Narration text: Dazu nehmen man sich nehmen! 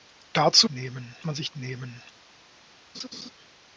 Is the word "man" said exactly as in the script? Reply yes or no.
yes